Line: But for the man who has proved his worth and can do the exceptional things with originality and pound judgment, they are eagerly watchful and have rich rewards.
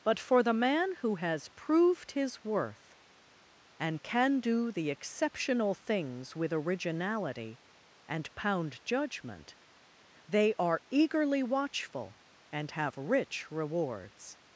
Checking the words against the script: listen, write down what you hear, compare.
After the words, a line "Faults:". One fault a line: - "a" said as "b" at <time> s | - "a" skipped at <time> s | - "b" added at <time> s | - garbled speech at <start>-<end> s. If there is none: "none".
But for the man who has proved his worth and can do the exceptional things with originality and pound judgment, they are eagerly watchful and have rich rewards.
Faults:
none